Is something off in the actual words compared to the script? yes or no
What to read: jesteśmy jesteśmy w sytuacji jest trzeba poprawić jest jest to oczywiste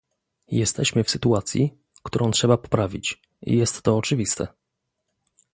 yes